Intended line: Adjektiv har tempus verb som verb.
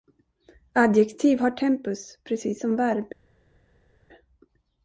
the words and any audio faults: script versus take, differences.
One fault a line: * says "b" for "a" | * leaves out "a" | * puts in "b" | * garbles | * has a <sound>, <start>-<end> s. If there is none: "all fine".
* says "precis" for "verb"